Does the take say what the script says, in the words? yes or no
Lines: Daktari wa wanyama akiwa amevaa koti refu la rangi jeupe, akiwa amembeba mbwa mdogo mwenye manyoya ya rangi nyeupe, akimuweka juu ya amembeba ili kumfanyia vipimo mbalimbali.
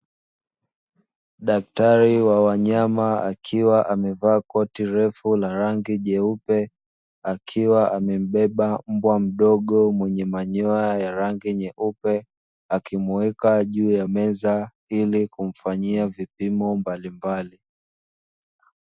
no